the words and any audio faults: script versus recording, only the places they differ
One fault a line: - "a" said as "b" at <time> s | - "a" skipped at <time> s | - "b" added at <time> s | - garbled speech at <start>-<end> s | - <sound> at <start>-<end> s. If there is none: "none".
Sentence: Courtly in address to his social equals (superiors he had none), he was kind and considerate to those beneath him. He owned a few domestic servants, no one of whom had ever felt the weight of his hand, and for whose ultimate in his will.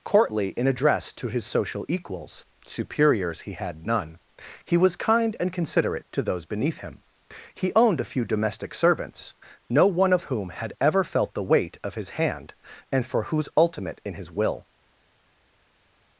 none